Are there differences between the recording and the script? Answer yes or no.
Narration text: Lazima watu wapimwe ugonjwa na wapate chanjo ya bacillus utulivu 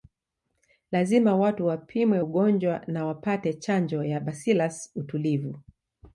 no